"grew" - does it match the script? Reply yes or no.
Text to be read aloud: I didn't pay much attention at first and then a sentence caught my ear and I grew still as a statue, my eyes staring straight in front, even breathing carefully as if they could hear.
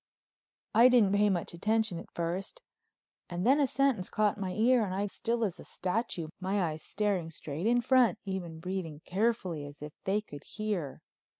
no